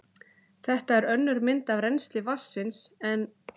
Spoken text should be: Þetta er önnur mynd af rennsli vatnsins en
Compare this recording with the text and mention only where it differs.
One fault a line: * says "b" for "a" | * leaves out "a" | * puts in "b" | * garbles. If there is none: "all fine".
all fine